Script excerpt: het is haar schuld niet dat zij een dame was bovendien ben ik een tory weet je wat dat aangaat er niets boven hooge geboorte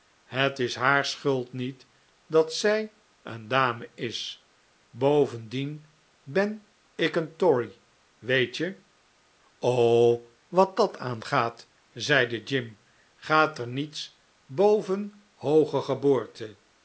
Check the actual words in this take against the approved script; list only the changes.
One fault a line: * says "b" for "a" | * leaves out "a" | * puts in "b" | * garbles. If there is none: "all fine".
* says "is" for "was"
* puts in "zeide jim gaat"